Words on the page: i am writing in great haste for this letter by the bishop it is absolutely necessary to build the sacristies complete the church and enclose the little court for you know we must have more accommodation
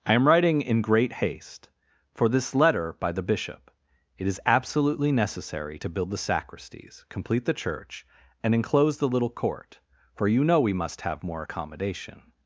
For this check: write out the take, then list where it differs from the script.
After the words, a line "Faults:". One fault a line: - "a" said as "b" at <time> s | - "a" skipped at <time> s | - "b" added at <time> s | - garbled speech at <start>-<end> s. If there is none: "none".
i am writing in great haste for this letter by the bishop it is absolutely necessary to build the sacristies complete the church and enclose the little court for you know we must have more accommodation
Faults:
none